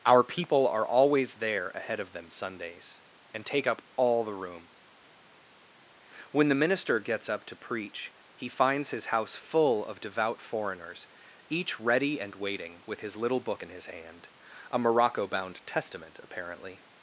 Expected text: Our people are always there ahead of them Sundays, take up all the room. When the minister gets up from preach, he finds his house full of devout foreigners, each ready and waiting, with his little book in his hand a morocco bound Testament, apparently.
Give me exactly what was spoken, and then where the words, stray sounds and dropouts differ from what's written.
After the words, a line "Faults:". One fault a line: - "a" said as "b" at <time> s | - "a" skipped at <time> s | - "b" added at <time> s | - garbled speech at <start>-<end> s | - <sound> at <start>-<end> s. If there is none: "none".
Our people are always there ahead of them Sundays, and take up all the room. When the minister gets up to preach, he finds his house full of devout foreigners, each ready and waiting, with his little book in his hand a morocco bound Testament, apparently.
Faults:
- "and" added at 3.3 s
- "from" said as "to" at 7.4 s